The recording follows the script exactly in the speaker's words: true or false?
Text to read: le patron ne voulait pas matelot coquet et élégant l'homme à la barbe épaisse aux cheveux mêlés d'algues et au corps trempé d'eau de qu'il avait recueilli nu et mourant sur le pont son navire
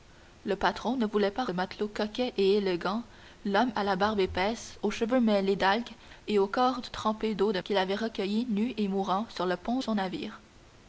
true